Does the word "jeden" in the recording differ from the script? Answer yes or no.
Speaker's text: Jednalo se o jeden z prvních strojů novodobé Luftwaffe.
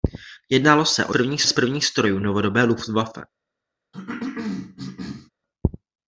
yes